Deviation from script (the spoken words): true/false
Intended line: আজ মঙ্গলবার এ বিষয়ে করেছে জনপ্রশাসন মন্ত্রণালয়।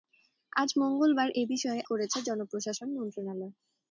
false